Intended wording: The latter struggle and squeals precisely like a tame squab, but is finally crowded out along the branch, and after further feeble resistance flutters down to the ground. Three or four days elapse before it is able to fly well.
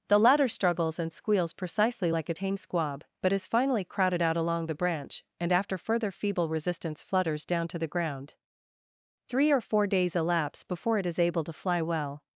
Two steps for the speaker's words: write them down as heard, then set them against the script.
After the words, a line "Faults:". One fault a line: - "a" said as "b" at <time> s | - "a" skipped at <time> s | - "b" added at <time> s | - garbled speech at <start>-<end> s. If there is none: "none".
The latter struggles and squeals precisely like a tame squab, but is finally crowded out along the branch, and after further feeble resistance flutters down to the ground. Three or four days elapse before it is able to fly well.
Faults:
- "struggle" said as "struggles" at 0.5 s